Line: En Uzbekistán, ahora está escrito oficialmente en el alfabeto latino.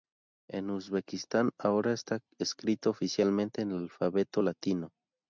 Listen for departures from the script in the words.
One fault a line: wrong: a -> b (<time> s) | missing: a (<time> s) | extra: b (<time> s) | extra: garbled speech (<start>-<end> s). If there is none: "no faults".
no faults